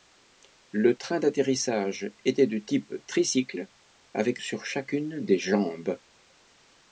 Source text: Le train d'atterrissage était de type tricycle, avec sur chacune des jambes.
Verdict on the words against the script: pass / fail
pass